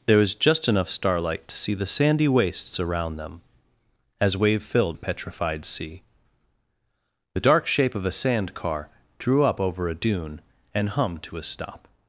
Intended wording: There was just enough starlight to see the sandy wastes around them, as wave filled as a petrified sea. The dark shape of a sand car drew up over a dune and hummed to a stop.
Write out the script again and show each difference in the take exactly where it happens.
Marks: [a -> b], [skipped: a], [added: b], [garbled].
There was just enough starlight to see the sandy wastes around them, as wave filled [skipped: as] a petrified sea. The dark shape of a sand car drew up over a dune and hummed to a stop.